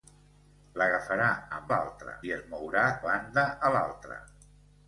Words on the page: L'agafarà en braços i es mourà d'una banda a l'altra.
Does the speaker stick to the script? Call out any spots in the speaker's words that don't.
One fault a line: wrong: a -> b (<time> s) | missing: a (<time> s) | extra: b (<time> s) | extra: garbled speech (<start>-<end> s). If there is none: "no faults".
wrong: braços -> l'altra (1.7 s)
missing: d'una (2.9 s)